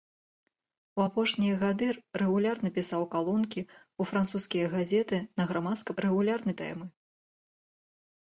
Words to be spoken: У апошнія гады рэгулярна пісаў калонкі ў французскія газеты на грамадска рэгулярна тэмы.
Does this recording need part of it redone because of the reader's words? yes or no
no